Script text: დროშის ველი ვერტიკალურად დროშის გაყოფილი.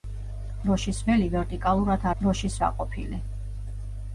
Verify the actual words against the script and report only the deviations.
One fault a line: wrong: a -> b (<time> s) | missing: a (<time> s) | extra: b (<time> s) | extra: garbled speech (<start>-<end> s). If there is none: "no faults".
no faults